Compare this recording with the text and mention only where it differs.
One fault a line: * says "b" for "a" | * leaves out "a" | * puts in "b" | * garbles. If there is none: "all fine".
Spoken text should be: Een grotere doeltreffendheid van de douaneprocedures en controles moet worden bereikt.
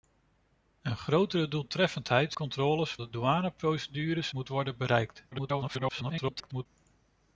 * says "controles" for "van"
* leaves out "en controles"
* garbles